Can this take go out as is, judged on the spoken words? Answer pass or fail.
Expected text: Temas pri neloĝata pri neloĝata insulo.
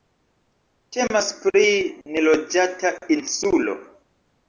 fail